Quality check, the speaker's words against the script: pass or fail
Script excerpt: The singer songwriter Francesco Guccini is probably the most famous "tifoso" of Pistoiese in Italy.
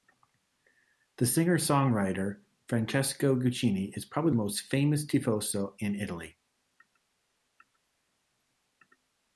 fail